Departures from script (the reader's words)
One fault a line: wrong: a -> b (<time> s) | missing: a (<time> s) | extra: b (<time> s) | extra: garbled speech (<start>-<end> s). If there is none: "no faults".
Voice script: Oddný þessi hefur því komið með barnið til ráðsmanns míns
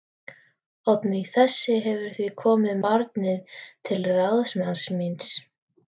missing: með (2.8 s)